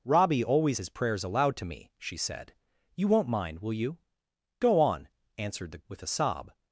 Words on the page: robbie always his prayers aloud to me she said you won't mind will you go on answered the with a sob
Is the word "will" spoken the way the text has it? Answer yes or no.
yes